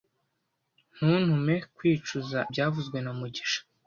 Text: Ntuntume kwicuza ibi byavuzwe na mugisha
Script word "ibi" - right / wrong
wrong